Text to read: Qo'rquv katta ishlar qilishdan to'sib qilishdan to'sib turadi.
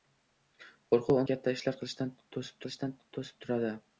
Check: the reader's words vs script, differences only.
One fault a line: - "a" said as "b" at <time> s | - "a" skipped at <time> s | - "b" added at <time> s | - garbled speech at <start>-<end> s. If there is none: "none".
none